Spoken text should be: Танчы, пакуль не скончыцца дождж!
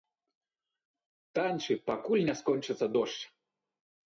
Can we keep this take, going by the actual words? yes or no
yes